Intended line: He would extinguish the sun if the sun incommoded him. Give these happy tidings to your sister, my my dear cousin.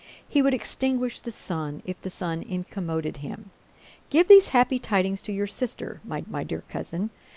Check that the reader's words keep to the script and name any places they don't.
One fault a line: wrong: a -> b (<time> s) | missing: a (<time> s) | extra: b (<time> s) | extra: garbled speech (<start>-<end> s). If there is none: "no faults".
no faults